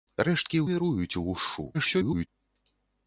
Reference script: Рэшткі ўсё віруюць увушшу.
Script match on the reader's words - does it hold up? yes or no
no